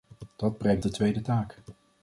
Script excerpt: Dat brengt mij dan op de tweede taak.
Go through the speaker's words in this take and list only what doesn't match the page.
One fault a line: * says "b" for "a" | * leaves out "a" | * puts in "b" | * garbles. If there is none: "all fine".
* leaves out "mij dan op"